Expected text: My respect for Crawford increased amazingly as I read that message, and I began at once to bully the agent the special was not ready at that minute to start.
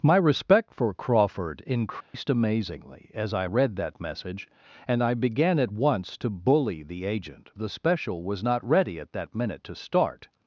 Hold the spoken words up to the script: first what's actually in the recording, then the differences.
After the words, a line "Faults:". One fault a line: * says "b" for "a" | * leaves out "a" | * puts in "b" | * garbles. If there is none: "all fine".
My respect for Crawford increased amazingly as I read that message, and I began at once to bully the agent the special was not ready at that minute to start.
Faults:
all fine